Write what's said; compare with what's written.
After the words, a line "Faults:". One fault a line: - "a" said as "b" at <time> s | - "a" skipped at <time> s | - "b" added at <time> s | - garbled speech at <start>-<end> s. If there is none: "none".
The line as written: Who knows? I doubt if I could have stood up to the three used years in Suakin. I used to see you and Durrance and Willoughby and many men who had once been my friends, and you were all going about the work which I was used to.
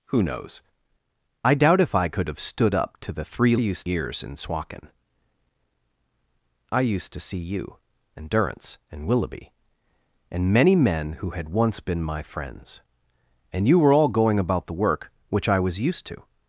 Who knows? I doubt if I could have stood up to the three used years in Suakin. I used to see you and Durrance and Willoughby and many men who had once been my friends, and you were all going about the work which I was used to.
Faults:
none